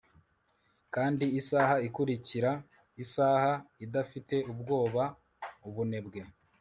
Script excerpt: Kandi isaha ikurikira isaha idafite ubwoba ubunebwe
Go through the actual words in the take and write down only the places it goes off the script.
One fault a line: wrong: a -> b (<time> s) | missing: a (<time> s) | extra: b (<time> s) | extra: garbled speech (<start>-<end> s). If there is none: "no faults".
no faults